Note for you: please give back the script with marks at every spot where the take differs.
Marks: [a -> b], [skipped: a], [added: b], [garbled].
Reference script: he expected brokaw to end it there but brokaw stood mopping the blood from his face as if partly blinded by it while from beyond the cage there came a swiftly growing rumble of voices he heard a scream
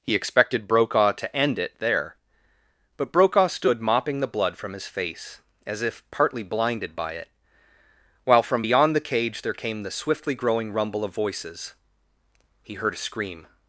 he expected brokaw to end it there but brokaw stood mopping the blood from his face as if partly blinded by it while from beyond the cage there came [a -> the] swiftly growing rumble of voices he heard a scream